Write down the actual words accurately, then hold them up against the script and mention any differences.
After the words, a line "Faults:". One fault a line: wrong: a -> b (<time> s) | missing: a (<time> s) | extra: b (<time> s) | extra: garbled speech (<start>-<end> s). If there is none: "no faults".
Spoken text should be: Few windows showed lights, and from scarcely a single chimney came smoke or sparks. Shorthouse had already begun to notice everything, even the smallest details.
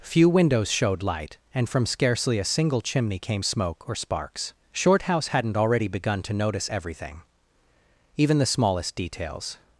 Few windows showed light, and from scarcely a single chimney came smoke or sparks. Shorthouse hadn't already begun to notice everything, even the smallest details.
Faults:
wrong: lights -> light (1.0 s)
wrong: had -> hadn't (5.3 s)